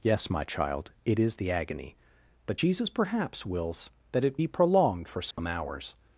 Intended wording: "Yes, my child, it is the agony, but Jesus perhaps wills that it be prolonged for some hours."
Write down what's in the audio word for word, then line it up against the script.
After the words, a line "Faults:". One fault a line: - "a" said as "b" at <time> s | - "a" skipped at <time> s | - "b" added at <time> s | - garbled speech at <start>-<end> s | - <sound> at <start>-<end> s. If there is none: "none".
"Yes, my child, it is the agony, but Jesus perhaps wills that it be prolonged for some hours."
Faults:
- dropout at 5.3-5.4 s